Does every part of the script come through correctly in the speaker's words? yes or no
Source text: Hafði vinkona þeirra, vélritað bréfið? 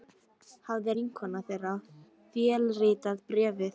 yes